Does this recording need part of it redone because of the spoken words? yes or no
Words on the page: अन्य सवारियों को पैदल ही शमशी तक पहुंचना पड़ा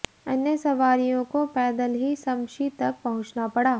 no